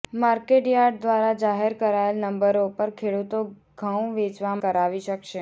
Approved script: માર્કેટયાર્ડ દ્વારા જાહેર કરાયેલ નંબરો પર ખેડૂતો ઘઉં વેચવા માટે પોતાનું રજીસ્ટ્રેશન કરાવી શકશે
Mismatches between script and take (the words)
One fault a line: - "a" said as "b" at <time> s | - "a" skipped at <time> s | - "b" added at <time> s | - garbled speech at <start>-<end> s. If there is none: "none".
- "માટે પોતાનું રજીસ્ટ્રેશન" skipped at 4.5 s